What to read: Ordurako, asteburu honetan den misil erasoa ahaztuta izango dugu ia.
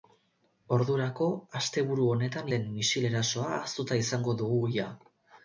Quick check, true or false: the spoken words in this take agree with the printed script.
true